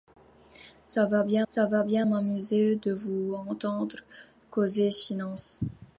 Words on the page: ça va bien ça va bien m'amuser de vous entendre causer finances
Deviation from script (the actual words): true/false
false